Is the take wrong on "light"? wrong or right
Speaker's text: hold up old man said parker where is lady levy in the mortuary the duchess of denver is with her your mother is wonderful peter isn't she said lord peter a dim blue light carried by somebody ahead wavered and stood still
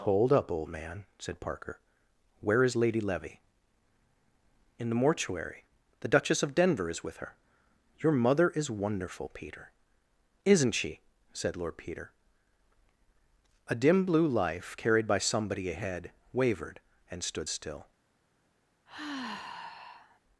wrong